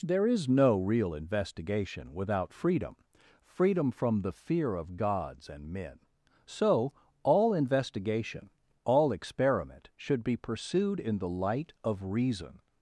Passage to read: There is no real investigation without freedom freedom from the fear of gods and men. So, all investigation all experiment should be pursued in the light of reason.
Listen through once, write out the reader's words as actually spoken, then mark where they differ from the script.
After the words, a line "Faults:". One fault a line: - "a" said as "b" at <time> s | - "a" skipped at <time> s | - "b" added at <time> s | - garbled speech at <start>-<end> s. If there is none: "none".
There is no real investigation without freedom freedom from the fear of gods and men. So, all investigation all experiment should be pursued in the light of reason.
Faults:
none